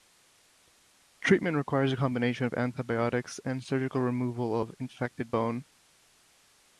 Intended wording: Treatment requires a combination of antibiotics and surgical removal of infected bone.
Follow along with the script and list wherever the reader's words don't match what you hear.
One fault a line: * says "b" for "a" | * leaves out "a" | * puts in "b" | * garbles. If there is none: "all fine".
all fine